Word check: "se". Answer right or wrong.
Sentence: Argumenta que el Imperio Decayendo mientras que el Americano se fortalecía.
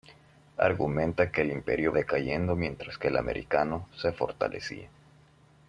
right